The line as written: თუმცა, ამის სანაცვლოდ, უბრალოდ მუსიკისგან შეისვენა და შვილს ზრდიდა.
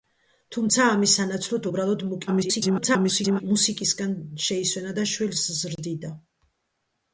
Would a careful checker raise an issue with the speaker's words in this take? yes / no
yes